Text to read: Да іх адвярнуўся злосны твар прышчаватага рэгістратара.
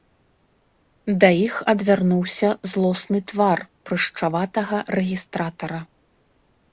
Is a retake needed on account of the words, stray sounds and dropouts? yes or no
no